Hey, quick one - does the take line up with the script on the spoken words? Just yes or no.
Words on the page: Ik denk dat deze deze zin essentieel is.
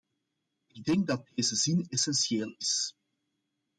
no